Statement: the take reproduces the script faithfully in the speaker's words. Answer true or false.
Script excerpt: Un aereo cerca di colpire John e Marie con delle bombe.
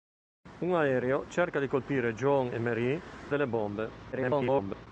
false